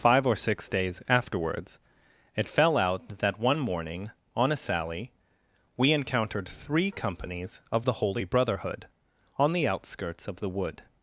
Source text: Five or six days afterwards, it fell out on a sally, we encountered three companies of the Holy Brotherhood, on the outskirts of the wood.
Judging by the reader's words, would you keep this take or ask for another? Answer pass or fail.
fail